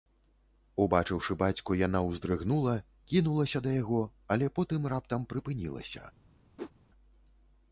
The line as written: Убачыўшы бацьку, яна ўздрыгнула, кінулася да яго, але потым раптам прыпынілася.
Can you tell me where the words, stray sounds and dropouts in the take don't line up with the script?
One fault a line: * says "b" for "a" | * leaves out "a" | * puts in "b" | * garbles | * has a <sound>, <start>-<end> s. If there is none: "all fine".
* has a whoosh, 6.6-6.7 s